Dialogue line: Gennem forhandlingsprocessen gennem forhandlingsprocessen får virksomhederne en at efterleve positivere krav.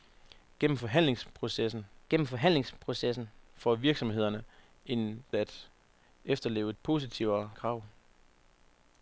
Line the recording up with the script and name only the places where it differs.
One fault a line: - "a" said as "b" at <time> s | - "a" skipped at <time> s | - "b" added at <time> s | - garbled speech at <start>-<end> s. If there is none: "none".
none